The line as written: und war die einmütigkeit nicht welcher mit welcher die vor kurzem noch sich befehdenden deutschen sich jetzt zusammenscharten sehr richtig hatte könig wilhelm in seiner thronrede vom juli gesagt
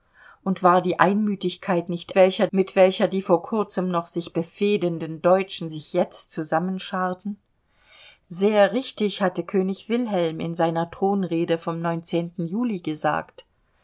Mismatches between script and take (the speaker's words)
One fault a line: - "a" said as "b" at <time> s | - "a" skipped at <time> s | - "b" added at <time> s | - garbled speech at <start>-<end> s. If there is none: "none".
none